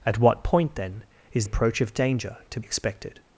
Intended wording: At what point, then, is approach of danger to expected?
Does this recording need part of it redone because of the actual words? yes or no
no